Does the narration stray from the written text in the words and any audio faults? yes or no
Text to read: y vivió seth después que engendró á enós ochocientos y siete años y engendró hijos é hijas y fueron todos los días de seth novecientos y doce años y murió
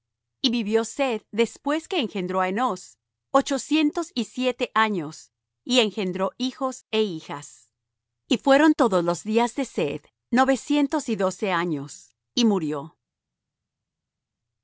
no